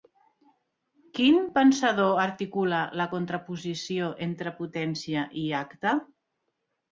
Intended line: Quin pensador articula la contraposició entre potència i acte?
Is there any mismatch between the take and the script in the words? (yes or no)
no